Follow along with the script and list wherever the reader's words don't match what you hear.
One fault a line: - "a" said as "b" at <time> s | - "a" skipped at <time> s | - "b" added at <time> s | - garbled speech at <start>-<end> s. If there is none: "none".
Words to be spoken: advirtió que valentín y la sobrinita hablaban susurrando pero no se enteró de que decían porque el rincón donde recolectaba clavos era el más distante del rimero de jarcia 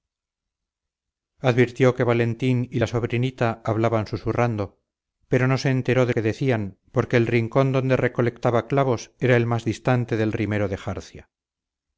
none